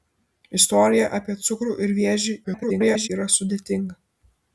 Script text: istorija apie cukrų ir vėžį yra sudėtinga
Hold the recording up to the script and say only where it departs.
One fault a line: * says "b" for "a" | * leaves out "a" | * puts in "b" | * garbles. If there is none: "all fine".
* garbles